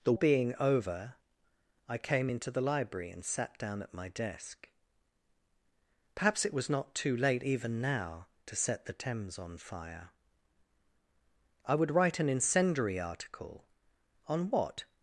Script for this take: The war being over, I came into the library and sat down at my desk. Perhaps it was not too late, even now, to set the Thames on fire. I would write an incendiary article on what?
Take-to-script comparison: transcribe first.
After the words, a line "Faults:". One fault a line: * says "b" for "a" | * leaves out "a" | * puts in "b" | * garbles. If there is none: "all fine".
The being over, I came into the library and sat down at my desk. Perhaps it was not too late, even now, to set the Thames on fire. I would write an incendiary article on what?
Faults:
* leaves out "war"